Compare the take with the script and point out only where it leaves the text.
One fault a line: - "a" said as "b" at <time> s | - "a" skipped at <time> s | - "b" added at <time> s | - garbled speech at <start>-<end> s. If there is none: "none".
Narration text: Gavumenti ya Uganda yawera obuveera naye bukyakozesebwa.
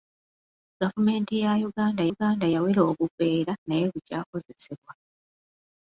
- "Uganda" added at 2.1 s